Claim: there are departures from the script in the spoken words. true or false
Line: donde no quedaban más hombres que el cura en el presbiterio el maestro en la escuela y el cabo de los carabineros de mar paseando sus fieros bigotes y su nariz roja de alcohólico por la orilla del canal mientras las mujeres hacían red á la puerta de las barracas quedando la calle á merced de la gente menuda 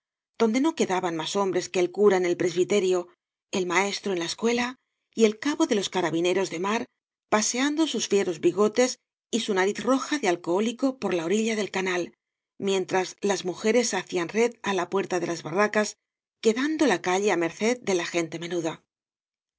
false